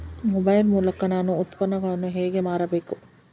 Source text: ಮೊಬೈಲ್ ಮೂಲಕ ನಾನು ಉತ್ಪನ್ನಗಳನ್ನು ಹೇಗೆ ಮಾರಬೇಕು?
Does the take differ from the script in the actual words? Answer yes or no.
no